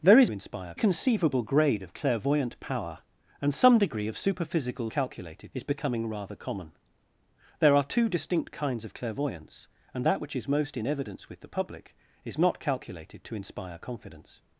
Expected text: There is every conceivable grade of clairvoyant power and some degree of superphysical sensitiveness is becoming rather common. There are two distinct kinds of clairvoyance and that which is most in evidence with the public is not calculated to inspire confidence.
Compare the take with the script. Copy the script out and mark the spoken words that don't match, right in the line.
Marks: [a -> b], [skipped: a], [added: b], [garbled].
There is [every -> inspire] conceivable grade of clairvoyant power and some degree of superphysical [sensitiveness -> calculated] is becoming rather common. There are two distinct kinds of clairvoyance and that which is most in evidence with the public is not calculated to inspire confidence.